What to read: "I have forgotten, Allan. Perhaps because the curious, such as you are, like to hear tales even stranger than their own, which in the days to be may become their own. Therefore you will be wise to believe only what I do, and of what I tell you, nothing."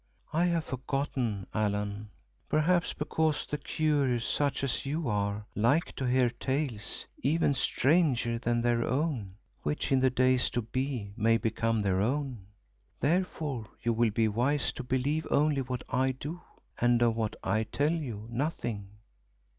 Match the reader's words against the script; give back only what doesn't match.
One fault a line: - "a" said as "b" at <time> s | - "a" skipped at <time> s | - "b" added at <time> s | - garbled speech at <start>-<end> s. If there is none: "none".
none